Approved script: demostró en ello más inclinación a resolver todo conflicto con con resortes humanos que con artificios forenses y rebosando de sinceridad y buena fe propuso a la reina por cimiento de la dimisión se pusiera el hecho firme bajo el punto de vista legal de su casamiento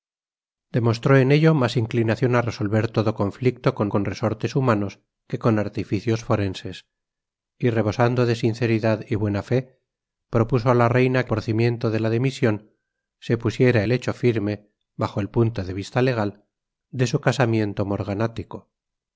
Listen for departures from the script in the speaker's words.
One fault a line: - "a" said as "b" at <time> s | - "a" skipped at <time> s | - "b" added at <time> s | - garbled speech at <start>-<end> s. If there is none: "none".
none